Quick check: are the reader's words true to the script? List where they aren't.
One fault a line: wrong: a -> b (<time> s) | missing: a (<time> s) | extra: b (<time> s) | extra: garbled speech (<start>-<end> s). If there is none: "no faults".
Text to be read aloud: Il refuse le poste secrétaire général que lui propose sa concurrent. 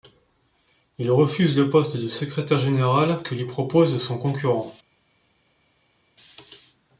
extra: de (1.9 s)
wrong: sa -> son (4.0 s)